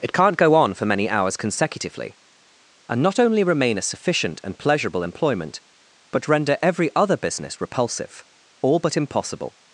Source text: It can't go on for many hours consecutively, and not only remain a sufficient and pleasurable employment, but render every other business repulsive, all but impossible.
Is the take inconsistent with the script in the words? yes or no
no